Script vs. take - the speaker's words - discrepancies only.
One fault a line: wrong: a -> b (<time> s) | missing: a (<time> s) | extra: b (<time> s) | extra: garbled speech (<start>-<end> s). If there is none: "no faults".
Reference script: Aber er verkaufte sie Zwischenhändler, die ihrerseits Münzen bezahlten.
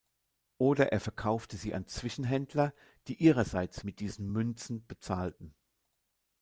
wrong: Aber -> Oder (0.6 s)
extra: an (1.8 s)
extra: mit diesen (3.8 s)